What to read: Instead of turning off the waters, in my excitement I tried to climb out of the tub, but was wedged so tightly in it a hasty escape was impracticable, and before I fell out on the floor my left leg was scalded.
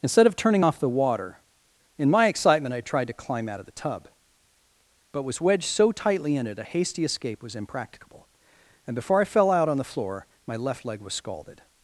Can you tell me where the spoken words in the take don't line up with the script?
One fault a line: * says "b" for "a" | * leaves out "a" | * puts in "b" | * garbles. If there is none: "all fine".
* says "water" for "waters"